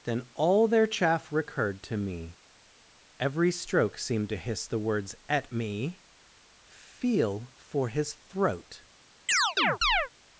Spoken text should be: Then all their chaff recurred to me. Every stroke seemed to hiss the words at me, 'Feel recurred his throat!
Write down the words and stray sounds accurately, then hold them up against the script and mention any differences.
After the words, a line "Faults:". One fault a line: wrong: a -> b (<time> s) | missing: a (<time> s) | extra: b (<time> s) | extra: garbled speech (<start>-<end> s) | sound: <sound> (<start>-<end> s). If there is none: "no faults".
Then all their chaff recurred to me. Every stroke seemed to hiss the words at me, 'Feel for his throat!
Faults:
wrong: recurred -> for (7.6 s)
sound: chirp (9.3-10.1 s)